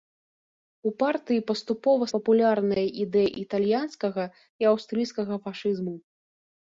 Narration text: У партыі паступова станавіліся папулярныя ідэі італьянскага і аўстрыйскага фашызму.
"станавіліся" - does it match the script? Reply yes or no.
no